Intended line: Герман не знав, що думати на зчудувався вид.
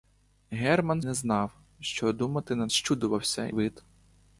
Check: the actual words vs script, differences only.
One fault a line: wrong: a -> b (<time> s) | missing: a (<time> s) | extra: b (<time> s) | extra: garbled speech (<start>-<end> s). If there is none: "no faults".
no faults